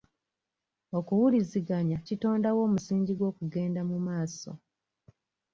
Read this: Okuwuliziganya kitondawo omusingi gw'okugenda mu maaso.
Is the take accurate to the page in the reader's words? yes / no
yes